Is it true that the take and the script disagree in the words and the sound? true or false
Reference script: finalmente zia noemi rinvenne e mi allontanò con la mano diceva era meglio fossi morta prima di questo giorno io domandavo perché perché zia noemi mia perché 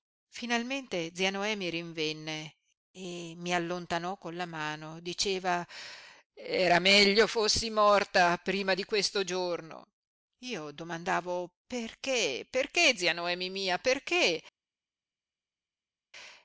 false